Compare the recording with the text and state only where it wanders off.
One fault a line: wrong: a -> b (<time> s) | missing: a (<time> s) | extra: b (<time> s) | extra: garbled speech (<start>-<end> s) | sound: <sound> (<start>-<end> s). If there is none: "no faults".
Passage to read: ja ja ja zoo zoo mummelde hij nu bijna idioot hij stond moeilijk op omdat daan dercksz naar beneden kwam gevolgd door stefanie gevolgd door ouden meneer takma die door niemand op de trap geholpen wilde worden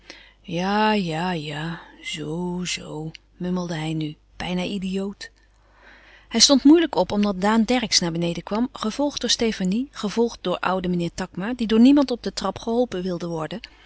no faults